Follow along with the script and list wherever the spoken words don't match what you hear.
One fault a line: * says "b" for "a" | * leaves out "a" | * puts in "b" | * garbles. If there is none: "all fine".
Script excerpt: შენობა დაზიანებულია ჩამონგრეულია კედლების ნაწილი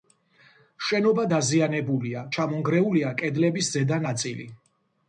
* puts in "ზედა"